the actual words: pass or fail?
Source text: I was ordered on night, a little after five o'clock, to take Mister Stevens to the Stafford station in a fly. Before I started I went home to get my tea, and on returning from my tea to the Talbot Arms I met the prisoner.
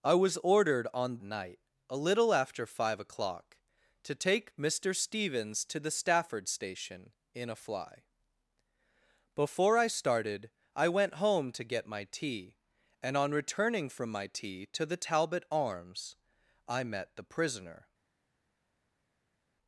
pass